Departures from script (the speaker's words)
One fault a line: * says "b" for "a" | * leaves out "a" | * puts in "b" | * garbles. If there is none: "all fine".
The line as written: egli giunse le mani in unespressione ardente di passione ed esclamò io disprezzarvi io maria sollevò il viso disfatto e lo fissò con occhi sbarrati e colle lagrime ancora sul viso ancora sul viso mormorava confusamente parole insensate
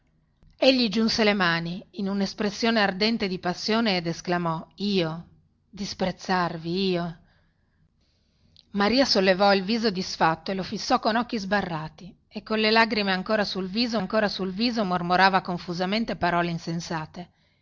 all fine